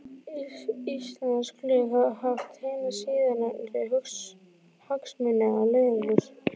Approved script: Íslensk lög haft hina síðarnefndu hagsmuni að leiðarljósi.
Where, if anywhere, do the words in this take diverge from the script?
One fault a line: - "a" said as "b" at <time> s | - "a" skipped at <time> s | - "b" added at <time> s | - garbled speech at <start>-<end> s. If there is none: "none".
- "hafa" added at 2.0 s